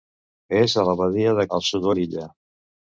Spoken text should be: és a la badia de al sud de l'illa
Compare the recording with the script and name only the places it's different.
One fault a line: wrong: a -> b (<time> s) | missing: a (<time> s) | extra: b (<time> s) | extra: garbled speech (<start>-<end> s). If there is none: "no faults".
no faults